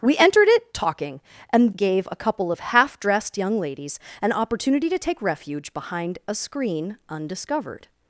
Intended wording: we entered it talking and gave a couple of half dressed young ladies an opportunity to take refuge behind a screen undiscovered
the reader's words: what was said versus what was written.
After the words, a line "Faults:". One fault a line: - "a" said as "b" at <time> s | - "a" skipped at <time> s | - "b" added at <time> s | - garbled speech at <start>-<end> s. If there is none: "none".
we entered it talking and gave a couple of half dressed young ladies an opportunity to take refuge behind a screen undiscovered
Faults:
none